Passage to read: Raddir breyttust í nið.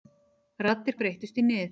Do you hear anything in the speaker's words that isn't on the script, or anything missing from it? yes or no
no